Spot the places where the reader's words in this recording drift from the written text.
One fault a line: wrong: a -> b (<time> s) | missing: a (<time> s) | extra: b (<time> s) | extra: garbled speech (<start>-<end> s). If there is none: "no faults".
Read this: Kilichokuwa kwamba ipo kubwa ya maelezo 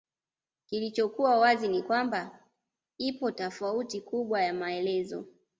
extra: wazi ni (1.4 s)
extra: tofauti (3.3 s)